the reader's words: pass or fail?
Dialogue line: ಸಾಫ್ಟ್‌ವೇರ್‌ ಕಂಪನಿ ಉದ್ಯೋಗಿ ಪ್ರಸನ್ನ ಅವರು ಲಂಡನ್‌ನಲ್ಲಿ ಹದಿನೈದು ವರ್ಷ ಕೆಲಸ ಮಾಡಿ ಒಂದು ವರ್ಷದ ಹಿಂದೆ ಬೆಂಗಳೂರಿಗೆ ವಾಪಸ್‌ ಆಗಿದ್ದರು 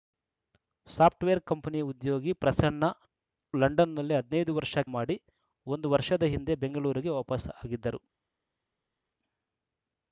fail